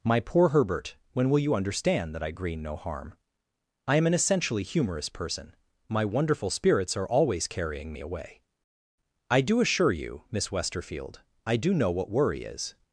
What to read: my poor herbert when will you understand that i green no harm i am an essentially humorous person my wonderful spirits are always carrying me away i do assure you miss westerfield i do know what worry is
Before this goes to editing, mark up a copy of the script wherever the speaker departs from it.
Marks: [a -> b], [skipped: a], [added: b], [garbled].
my poor herbert when will you understand that i green no harm i am an essentially humorous person my wonderful spirits are always carrying me away i do assure you miss westerfield i do know what worry is